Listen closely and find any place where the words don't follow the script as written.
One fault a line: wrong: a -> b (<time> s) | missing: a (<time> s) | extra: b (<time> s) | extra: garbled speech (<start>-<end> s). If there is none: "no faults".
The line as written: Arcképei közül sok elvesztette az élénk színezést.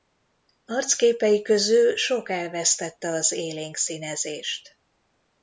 no faults